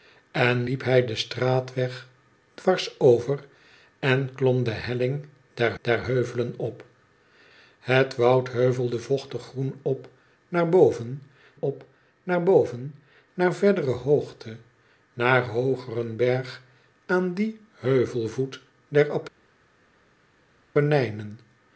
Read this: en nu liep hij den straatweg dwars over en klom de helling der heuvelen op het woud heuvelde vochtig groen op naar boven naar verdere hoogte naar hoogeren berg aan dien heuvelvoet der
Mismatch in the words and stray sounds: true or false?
true